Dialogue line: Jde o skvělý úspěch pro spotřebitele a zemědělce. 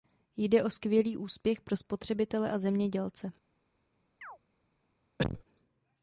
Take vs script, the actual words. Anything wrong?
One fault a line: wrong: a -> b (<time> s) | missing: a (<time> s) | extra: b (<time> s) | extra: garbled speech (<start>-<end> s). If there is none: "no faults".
no faults